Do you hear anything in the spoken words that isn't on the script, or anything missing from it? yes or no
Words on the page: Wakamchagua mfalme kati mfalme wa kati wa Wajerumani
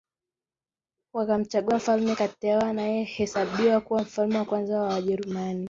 yes